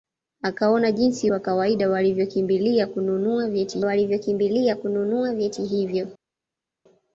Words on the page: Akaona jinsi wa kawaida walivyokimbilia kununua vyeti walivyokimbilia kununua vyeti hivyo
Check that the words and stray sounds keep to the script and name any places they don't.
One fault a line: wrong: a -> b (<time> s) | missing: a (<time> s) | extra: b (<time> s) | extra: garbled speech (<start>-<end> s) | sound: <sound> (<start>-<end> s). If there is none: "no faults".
no faults